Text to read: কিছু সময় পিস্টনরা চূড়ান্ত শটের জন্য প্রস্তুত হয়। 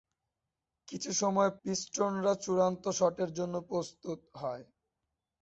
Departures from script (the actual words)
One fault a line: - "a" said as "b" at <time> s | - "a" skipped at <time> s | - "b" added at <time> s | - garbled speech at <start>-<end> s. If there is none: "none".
none